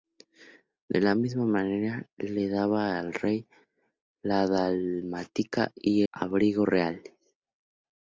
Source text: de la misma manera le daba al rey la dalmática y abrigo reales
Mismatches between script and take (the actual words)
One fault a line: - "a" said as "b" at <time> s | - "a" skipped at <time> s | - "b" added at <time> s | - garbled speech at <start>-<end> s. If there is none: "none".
none